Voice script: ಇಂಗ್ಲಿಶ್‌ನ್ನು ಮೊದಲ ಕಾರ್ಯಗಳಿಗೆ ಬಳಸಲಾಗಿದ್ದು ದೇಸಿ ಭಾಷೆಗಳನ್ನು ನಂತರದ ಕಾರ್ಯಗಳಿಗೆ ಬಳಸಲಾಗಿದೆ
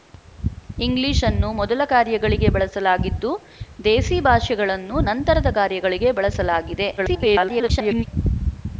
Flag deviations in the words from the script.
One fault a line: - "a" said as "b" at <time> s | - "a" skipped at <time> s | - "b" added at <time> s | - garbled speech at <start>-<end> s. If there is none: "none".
- garbled speech at 7.0-8.1 s